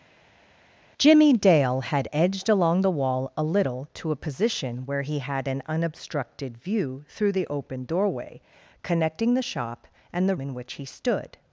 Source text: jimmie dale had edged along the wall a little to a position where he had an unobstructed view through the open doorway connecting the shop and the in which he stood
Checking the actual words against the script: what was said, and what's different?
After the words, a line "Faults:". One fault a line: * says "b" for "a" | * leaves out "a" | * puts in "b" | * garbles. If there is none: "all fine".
jimmie dale had edged along the wall a little to a position where he had an unobstructed view through the open doorway connecting the shop and the in which he stood
Faults:
all fine